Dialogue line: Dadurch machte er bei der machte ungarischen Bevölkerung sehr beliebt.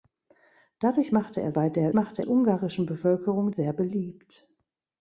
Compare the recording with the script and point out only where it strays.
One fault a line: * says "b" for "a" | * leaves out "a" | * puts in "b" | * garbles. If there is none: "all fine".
all fine